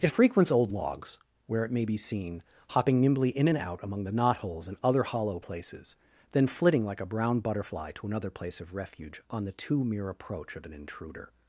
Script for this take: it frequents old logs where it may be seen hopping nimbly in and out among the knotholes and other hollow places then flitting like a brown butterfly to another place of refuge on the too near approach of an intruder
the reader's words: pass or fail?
fail